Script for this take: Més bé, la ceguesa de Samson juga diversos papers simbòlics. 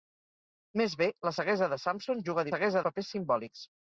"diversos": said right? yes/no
no